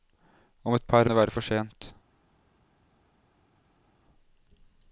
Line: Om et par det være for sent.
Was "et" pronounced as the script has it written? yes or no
yes